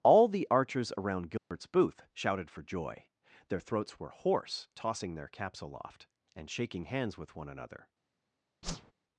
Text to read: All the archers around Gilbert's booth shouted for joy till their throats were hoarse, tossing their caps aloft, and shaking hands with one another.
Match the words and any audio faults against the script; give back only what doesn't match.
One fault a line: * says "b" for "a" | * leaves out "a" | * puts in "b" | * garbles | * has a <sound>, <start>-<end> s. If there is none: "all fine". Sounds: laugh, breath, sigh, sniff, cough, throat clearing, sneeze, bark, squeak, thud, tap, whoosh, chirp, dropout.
* has a dropout, 1.4-1.5 s
* leaves out "till"
* has a whoosh, 8.6-8.9 s